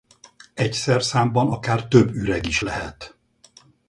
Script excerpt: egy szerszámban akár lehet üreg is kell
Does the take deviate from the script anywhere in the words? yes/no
yes